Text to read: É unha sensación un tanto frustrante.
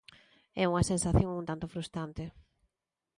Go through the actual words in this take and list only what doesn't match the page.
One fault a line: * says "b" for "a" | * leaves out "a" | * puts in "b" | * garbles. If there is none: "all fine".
all fine